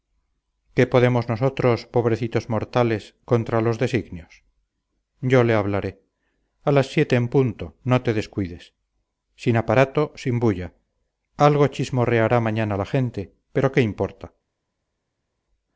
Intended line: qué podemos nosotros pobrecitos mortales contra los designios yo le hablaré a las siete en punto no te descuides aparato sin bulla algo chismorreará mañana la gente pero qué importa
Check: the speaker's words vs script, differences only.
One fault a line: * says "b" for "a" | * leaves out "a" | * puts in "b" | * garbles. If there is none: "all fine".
* puts in "sin"